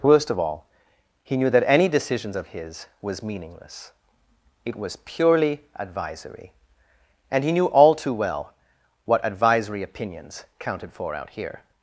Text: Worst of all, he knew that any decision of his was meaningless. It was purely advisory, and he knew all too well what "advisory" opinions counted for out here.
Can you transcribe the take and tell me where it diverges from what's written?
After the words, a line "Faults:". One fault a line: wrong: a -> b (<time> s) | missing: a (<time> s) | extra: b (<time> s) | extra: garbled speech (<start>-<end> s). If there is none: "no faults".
Worst of all, he knew that any decisions of his was meaningless. It was purely advisory, and he knew all too well what "advisory" opinions counted for out here.
Faults:
wrong: decision -> decisions (1.9 s)